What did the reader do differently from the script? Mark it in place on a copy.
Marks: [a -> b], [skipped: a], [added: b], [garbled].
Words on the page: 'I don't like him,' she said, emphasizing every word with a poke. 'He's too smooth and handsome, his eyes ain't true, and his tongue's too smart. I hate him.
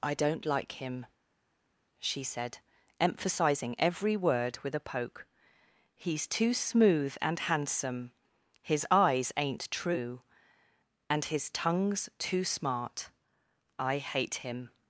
'I don't like him,' she said, emphasizing every word with a poke. 'He's too smooth and handsome, his eyes ain't true, and his tongue's too smart. I hate him.